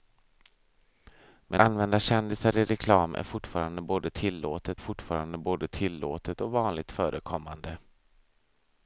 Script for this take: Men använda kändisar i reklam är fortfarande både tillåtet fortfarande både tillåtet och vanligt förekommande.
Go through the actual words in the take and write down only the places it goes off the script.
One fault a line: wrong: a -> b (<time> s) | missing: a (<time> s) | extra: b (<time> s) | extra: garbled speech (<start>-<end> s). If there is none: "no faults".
no faults